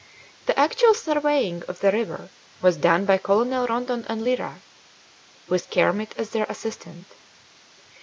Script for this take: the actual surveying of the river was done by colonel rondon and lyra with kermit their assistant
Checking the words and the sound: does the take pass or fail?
fail